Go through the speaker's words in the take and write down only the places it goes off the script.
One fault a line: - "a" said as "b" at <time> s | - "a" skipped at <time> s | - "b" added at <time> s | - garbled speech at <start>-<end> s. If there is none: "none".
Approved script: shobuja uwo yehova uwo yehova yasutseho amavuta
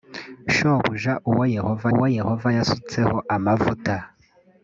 none